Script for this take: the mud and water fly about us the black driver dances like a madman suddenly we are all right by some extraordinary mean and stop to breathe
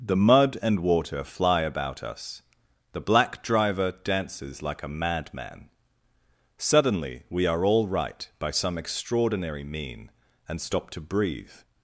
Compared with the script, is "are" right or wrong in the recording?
right